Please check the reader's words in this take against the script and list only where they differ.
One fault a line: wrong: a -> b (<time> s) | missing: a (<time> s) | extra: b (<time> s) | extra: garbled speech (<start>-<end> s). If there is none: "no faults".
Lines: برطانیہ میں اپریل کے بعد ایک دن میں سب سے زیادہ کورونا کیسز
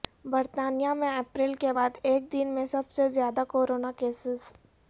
no faults